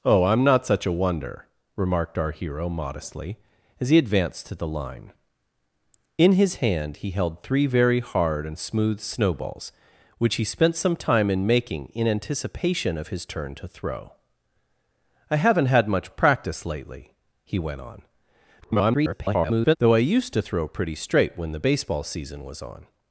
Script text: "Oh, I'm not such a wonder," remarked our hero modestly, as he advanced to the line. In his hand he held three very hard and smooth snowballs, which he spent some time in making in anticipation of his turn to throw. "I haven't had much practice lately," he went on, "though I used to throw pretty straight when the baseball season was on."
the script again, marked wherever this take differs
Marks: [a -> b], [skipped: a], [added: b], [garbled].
"Oh, I'm not such a wonder," remarked our hero modestly, as he advanced to the line. In his hand he held three very hard and smooth snowballs, which he spent some time in making in anticipation of his turn to throw. "I haven't had much practice lately," he went on, [garbled] "though I used to throw pretty straight when the baseball season was on."